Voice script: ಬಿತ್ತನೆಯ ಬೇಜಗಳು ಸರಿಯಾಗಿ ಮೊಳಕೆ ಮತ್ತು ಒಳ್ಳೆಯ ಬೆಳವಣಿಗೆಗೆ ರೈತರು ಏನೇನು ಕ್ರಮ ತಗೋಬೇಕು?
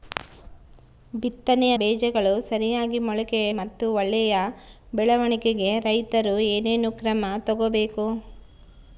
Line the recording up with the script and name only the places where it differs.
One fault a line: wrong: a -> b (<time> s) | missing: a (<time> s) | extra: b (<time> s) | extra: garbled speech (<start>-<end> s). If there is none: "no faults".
no faults